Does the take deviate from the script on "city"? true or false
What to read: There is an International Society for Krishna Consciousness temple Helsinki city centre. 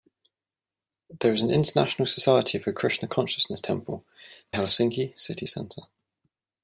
false